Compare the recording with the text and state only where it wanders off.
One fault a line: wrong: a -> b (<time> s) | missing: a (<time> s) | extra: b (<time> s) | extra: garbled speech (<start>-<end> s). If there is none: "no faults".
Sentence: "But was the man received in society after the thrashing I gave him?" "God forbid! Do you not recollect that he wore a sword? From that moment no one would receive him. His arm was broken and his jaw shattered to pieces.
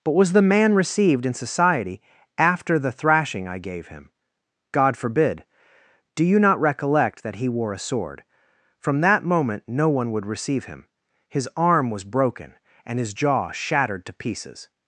no faults